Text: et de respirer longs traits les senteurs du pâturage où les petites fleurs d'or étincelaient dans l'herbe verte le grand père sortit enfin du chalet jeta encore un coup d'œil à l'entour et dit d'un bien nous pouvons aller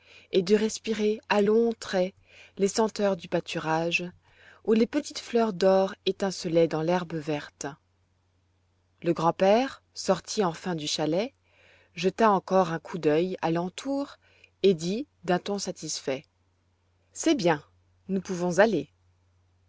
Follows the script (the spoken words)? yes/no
no